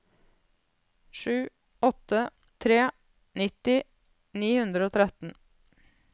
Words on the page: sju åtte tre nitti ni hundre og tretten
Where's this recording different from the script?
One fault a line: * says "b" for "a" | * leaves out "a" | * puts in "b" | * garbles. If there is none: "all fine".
all fine